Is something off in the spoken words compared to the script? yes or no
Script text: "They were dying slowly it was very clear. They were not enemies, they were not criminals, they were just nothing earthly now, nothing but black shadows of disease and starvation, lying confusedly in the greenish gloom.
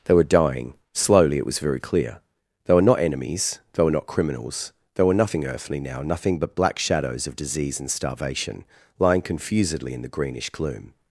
yes